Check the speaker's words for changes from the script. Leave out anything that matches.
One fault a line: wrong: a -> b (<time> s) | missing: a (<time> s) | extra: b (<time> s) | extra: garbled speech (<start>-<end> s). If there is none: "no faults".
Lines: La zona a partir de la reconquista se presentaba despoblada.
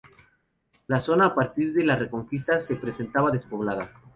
no faults